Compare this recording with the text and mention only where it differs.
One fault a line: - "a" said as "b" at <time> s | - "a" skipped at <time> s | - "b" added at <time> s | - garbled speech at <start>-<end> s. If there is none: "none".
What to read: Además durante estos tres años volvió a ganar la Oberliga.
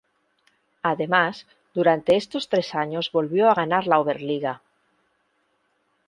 none